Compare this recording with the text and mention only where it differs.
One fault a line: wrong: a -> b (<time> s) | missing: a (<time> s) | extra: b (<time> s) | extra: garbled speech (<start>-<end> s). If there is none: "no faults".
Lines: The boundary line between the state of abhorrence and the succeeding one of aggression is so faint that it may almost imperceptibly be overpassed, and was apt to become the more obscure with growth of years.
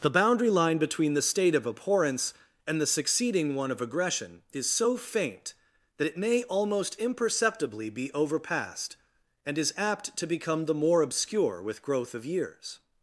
wrong: was -> is (9.6 s)